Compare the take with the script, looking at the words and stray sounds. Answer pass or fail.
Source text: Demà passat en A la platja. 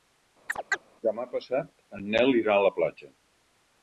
fail